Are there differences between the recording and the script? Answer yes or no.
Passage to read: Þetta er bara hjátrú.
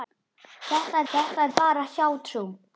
yes